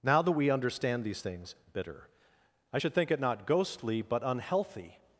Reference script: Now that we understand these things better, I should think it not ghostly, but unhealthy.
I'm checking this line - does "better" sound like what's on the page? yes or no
no